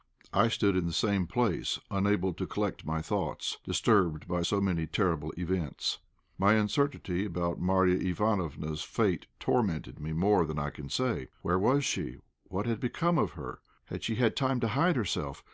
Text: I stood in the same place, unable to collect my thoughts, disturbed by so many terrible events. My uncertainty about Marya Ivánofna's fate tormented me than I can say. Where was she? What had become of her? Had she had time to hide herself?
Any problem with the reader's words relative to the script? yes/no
yes